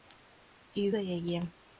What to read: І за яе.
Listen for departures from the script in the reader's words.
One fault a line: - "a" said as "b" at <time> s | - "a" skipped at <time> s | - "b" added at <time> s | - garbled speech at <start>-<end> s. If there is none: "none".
none